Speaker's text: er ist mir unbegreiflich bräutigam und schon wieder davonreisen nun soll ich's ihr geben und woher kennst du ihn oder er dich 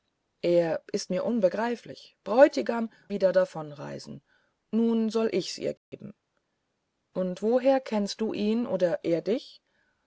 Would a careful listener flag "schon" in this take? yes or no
yes